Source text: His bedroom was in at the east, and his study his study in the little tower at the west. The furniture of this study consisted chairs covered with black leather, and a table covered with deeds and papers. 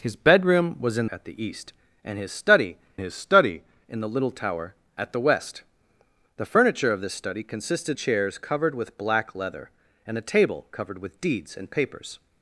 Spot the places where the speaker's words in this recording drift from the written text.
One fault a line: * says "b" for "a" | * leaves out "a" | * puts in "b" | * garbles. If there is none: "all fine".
all fine